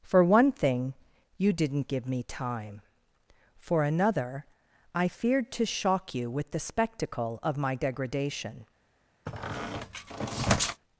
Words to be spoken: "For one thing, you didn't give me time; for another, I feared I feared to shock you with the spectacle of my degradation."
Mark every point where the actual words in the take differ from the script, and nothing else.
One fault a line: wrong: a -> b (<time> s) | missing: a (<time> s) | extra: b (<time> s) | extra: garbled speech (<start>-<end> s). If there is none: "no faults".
missing: I feared (5.5 s)